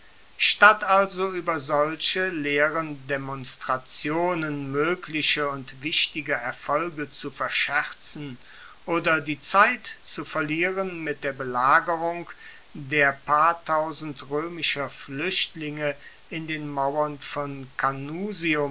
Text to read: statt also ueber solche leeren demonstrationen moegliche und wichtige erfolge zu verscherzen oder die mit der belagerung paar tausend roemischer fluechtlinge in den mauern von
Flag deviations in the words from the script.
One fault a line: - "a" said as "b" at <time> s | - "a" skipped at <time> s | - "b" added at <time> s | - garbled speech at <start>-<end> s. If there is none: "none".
- "zeit zu verlieren" added at 9.4 s
- "der" added at 12.7 s